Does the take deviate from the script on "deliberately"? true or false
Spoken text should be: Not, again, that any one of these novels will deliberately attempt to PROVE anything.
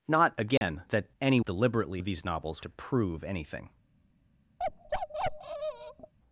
true